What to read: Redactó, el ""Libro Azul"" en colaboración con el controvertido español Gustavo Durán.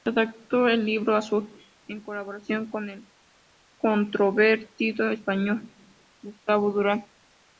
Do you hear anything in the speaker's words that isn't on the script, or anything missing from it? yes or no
no